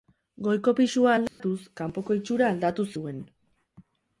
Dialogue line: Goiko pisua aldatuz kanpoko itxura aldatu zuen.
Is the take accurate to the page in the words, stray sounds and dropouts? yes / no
no